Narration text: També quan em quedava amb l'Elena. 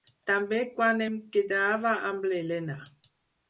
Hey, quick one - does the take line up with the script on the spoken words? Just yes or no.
yes